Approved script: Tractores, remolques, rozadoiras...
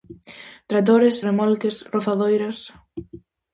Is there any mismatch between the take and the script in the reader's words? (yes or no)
no